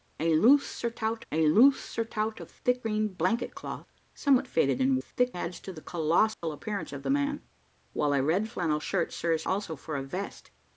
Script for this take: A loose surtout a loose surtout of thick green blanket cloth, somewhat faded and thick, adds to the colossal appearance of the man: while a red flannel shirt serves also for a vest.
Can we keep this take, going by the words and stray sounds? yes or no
no